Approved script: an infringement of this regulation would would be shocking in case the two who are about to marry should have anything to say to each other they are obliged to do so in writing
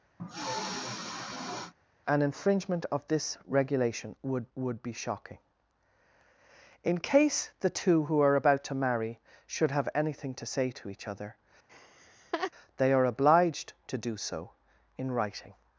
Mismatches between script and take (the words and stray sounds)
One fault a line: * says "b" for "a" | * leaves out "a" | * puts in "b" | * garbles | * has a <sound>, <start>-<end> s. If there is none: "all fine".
* has a sniff, 0.2-1.7 s
* has a laugh, 11.7-12.5 s